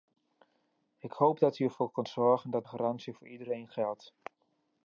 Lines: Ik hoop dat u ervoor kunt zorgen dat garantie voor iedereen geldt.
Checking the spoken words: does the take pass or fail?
pass